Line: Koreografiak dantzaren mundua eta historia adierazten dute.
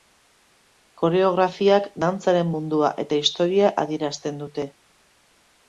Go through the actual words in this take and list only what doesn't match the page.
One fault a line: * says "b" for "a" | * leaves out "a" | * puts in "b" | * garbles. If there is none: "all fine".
all fine